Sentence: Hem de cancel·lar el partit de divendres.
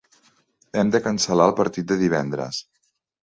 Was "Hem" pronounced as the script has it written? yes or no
yes